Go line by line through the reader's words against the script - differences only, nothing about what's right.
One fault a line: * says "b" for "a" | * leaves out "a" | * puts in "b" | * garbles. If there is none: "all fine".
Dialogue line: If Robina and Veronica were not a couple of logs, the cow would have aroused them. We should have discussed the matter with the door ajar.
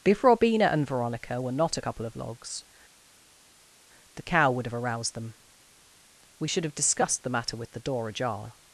all fine